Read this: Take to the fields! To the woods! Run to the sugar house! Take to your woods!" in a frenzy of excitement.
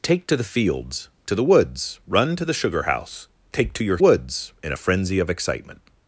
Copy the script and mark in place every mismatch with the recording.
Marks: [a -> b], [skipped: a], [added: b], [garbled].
Take to the fields! To the woods! Run to the sugar house! Take to your woods!" in a frenzy of excitement.